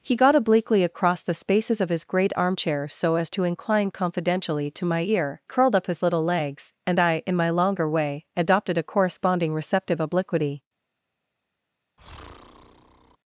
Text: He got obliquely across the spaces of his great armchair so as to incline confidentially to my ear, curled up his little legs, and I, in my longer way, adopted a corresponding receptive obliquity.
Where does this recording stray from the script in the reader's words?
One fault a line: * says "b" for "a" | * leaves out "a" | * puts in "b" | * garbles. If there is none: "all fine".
all fine